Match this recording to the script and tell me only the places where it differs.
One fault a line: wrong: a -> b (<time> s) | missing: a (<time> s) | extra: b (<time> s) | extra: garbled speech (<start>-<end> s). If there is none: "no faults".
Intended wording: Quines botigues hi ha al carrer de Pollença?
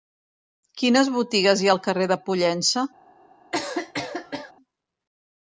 no faults